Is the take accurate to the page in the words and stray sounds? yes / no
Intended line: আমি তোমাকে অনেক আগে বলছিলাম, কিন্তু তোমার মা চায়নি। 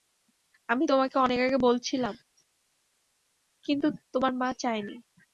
yes